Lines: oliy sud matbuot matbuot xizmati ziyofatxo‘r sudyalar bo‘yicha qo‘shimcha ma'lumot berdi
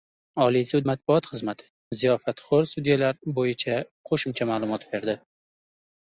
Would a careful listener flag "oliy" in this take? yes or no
no